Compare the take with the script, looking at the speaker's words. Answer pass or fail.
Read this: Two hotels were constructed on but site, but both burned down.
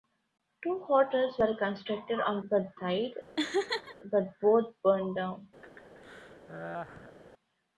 pass